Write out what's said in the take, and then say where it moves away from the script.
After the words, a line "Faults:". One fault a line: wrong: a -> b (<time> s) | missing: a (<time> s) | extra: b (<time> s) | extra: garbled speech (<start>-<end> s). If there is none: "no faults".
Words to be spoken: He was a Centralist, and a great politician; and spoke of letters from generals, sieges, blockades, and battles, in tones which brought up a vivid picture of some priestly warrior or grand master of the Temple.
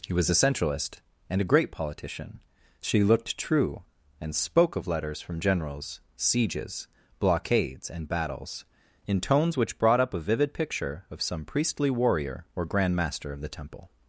He was a Centralist, and a great politician; she looked true and spoke of letters from generals, sieges, blockades, and battles, in tones which brought up a vivid picture of some priestly warrior or grand master of the Temple.
Faults:
extra: she looked true (2.8 s)